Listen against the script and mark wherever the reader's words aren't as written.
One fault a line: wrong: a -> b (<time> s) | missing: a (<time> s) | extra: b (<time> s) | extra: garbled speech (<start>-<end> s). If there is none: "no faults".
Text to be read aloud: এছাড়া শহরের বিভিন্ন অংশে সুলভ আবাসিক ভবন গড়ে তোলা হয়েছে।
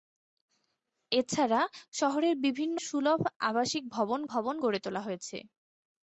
missing: অংশে (2.8 s)
extra: ভবন (4.3 s)